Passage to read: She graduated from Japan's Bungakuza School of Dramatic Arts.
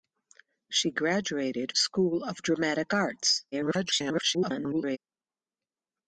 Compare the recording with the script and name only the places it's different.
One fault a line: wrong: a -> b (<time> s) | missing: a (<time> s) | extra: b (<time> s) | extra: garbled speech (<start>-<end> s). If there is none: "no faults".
missing: from Japan's Bungakuza (1.8 s)
extra: garbled speech (3.5-5.0 s)